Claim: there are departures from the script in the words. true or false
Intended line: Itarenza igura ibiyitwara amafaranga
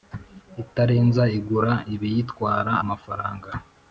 false